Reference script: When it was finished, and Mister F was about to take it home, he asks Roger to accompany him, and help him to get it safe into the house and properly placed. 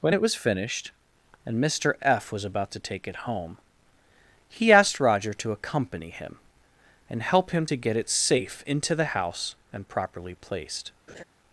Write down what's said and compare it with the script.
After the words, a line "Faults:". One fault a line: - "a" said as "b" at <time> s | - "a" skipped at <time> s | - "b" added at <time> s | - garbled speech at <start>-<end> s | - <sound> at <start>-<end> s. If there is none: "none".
When it was finished, and Mister F was about to take it home, he asked Roger to accompany him, and help him to get it safe into the house and properly placed.
Faults:
- "asks" said as "asked" at 4.7 s
- laugh at 11.1-11.2 s